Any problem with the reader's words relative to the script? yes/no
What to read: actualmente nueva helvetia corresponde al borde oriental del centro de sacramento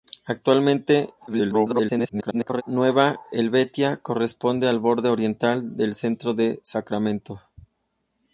yes